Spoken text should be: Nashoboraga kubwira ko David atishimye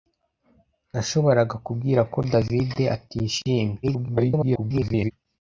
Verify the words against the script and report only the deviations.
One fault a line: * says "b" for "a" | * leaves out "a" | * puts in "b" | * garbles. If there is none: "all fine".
* garbles